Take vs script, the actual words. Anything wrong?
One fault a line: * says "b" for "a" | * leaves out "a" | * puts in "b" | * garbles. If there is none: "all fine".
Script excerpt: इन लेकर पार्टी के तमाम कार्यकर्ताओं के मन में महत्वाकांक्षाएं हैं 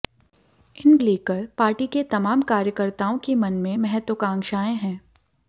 all fine